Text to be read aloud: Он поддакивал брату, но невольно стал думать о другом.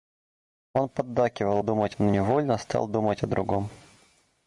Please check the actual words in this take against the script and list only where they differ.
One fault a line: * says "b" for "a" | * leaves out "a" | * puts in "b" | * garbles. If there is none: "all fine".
* says "думать" for "брату"